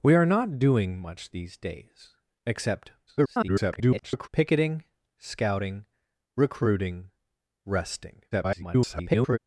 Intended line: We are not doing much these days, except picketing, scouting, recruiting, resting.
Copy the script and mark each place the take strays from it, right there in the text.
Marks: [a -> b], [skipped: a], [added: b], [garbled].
We are not doing much these days, except [garbled] picketing, scouting, recruiting, resting. [garbled]